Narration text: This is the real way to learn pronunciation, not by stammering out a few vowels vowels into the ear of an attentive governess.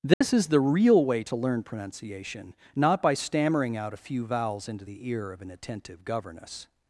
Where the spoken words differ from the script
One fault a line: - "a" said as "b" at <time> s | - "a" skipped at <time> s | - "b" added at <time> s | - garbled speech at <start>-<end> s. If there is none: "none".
- "vowels" skipped at 4.7 s